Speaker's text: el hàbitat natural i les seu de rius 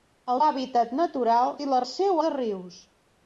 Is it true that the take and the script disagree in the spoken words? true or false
false